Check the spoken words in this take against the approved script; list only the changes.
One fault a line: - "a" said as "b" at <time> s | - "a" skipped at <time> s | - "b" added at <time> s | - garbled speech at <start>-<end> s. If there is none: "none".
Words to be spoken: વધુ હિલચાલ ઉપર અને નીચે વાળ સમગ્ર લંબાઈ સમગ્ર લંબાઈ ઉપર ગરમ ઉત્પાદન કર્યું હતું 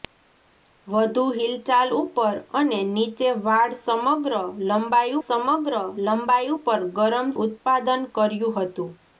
none